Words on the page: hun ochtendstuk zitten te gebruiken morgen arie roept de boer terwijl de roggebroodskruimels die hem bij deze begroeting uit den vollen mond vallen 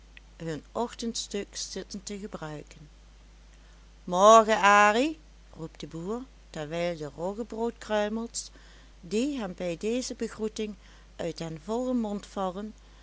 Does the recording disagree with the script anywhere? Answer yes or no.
no